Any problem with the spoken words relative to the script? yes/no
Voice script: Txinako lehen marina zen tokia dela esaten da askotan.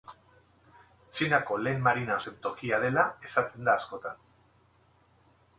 no